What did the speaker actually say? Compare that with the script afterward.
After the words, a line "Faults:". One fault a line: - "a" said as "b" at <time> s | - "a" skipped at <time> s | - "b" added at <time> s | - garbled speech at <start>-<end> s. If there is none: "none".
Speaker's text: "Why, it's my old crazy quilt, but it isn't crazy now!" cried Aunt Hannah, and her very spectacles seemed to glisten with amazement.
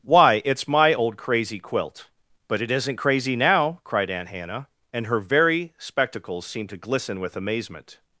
"Why, it's my old crazy quilt, but it isn't crazy now!" cried Aunt Hannah, and her very spectacles seemed to glisten with amazement.
Faults:
none